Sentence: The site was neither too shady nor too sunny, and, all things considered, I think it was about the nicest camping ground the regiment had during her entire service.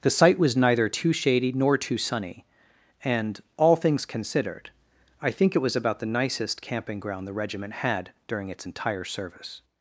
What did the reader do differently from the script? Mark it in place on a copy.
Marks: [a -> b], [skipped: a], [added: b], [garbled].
The site was neither too shady nor too sunny, and, all things considered, I think it was about the nicest camping ground the regiment had during [her -> its] entire service.